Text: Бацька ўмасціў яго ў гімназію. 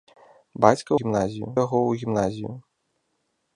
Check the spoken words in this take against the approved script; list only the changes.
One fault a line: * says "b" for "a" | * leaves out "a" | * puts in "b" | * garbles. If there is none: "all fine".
* says "гімназію" for "ўмасціў"